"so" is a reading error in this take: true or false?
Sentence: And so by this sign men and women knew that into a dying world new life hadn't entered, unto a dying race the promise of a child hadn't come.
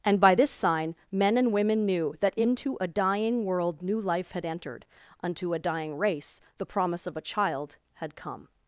true